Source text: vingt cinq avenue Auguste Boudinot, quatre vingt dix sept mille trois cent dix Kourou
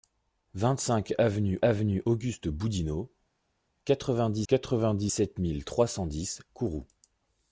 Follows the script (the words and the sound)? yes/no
no